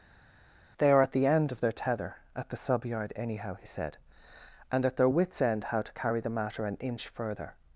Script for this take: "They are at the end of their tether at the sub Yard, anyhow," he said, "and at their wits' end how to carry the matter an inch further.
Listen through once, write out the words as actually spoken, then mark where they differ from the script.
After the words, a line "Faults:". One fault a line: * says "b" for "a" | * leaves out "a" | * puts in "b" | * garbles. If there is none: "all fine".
"They are at the end of their tether at the sub Yard, anyhow," he said, "and at their wits' end how to carry the matter an inch further.
Faults:
all fine